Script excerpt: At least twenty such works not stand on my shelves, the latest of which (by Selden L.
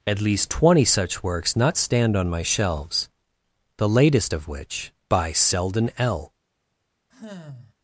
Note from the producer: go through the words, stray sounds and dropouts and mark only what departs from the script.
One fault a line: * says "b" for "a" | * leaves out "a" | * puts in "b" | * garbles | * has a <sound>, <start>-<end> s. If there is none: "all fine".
* has a sigh, 7.1-7.7 s